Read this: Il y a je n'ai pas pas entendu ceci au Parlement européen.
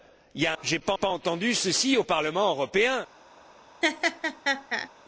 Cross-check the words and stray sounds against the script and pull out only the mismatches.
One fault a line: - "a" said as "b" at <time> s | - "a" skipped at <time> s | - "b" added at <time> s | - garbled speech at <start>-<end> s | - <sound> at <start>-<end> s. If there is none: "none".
- laugh at 3.8-4.9 s